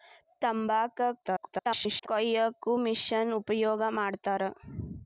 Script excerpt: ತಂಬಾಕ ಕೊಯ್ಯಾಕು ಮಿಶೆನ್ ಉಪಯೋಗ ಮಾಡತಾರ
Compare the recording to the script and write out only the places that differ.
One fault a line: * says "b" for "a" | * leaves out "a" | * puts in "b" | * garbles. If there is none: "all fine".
* garbles